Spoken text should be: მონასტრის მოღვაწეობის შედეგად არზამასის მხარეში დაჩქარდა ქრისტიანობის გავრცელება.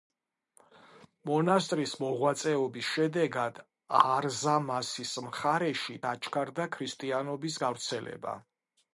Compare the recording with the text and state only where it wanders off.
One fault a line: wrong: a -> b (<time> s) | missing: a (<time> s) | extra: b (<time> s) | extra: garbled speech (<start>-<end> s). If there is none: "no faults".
no faults